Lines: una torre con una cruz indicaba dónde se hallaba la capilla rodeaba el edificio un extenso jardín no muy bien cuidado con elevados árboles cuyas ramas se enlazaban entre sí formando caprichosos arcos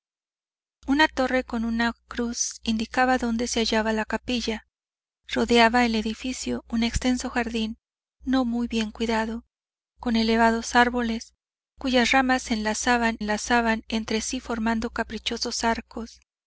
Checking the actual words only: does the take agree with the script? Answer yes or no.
no